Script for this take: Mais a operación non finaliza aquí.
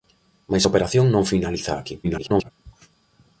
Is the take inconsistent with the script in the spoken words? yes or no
yes